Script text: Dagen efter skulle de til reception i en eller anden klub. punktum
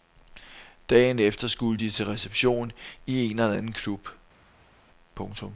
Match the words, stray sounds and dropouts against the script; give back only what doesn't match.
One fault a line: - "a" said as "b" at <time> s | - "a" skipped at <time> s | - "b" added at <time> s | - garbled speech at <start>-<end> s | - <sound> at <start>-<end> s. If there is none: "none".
none